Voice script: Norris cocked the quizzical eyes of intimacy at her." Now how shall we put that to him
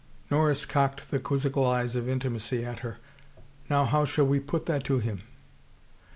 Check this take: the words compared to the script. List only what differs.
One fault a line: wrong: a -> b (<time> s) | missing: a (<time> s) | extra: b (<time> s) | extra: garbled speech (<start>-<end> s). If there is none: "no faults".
no faults